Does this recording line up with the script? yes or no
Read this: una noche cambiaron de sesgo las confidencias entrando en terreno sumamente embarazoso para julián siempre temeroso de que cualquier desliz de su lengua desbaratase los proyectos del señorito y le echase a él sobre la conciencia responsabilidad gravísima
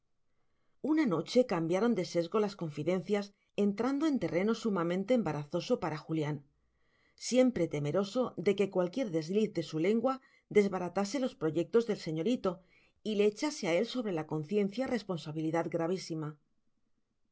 yes